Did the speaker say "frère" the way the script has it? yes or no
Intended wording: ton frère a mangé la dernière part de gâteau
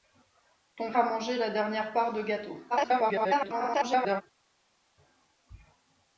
no